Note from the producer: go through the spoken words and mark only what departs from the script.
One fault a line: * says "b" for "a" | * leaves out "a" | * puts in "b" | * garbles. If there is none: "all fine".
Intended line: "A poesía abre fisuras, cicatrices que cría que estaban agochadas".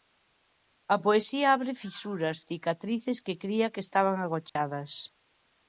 all fine